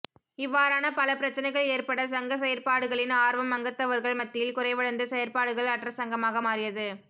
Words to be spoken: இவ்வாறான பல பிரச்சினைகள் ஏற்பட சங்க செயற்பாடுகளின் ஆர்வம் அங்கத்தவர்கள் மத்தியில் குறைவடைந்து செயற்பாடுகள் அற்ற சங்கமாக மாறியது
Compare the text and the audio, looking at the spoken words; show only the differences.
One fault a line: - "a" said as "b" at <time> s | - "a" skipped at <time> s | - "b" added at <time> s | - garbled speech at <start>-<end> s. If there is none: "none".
none